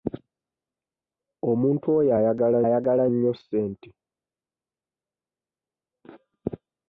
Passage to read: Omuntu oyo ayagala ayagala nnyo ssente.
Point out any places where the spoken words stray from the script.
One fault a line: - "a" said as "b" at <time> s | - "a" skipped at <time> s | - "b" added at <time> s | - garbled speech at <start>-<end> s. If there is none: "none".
none